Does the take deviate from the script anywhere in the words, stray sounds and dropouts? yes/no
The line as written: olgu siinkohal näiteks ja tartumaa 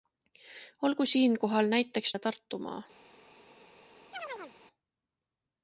yes